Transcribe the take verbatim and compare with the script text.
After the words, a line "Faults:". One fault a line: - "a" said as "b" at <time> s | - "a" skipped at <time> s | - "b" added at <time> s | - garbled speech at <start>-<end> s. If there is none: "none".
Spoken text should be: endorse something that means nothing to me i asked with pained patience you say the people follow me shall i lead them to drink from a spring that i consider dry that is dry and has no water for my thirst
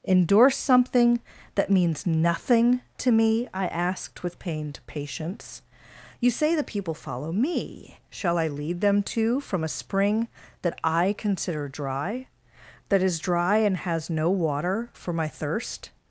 endorse something that means nothing to me i asked with pained patience you say the people follow me shall i lead them to from a spring that i consider dry that is dry and has no water for my thirst
Faults:
- "drink" skipped at 9.4 s